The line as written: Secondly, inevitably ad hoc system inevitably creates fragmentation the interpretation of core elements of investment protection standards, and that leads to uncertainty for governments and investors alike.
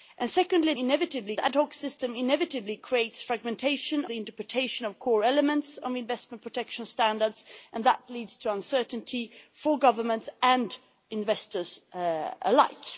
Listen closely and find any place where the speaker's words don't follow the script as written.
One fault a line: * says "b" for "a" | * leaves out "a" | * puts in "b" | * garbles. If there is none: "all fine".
all fine